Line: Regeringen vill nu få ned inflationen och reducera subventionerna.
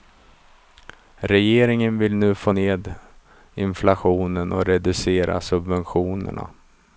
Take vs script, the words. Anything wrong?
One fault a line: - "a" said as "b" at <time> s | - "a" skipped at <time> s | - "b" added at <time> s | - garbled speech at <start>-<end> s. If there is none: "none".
none